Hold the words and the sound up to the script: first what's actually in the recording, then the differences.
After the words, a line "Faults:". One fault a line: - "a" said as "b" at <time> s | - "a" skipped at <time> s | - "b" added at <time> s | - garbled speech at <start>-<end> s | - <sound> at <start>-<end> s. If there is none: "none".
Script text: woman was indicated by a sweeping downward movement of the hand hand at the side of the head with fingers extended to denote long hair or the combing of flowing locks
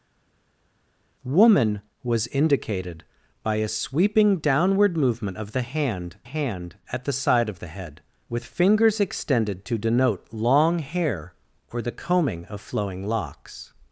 woman was indicated by a sweeping downward movement of the hand hand at the side of the head with fingers extended to denote long hair or the combing of flowing locks
Faults:
none